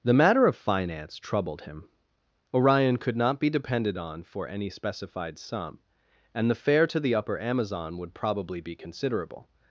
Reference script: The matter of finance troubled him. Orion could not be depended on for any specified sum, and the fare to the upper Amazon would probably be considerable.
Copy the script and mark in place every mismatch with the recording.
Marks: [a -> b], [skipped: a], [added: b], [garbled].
The matter of finance troubled him. Orion could not be depended on for any specified sum, and the fare to the upper Amazon would probably be considerable.